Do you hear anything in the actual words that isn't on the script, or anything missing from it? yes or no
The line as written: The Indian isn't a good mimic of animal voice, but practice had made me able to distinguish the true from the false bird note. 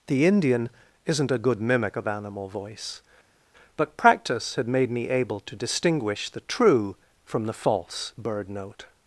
no